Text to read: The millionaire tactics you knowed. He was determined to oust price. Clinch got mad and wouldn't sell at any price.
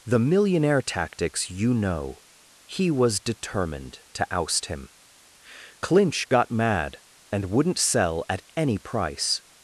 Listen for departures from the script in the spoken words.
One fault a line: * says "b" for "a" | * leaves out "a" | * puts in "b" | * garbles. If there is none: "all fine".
* says "know" for "knowed"
* says "him" for "price"